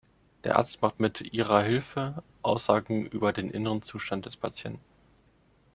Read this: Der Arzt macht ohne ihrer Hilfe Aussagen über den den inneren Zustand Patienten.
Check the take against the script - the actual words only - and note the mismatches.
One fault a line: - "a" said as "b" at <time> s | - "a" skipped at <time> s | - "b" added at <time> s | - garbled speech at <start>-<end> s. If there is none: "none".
- "ohne" said as "mit" at 1.0 s
- "den" skipped at 3.5 s
- "des" added at 4.3 s